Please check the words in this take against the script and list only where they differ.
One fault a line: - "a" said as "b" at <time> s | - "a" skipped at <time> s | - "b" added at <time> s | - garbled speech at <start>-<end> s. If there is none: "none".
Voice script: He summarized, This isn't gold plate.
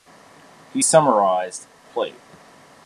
- "This isn't gold" skipped at 1.7 s